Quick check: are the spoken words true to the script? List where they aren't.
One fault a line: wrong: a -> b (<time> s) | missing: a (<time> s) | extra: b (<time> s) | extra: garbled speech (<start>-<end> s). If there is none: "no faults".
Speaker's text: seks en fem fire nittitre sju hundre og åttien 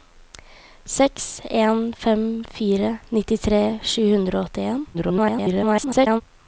extra: garbled speech (4.9-6.2 s)